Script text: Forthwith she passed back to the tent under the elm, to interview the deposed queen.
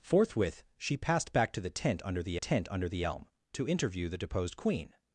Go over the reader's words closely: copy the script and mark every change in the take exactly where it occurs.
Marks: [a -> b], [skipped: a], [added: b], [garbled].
Forthwith she passed back to the tent under the [added: tent under the] elm, to interview the deposed queen.